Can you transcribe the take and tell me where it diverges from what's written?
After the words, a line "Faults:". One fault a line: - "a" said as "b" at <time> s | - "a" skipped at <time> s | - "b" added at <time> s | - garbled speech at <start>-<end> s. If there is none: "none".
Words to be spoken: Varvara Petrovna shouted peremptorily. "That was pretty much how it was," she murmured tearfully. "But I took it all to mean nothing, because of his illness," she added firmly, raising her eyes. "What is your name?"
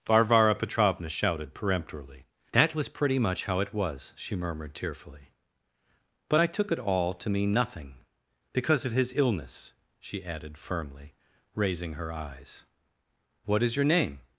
Varvara Petrovna shouted peremptorily. "That was pretty much how it was," she murmured tearfully. "But I took it all to mean nothing, because of his illness," she added firmly, raising her eyes. "What is your name?"
Faults:
none